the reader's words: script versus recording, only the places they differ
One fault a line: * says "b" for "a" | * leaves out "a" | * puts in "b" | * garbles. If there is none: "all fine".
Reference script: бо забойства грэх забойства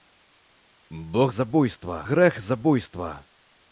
all fine